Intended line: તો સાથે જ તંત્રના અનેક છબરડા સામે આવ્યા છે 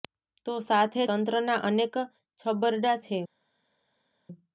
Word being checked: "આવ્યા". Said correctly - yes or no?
no